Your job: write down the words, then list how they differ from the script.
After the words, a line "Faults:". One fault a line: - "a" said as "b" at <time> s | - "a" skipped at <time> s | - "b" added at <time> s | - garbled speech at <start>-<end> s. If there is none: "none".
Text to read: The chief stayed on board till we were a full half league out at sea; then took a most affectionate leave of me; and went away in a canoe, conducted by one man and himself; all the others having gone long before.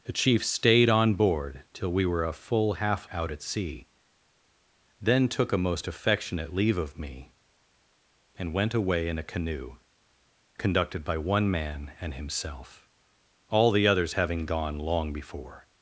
The chief stayed on board till we were a full half out at sea; then took a most affectionate leave of me; and went away in a canoe, conducted by one man and himself; all the others having gone long before.
Faults:
- "league" skipped at 3.1 s